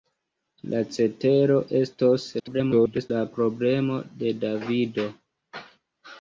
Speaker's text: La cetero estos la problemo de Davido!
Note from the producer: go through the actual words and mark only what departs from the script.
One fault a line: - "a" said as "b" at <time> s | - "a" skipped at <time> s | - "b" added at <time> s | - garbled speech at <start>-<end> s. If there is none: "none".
- garbled speech at 2.4-3.1 s